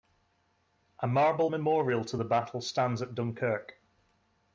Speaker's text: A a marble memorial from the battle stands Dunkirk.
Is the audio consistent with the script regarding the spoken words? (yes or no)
no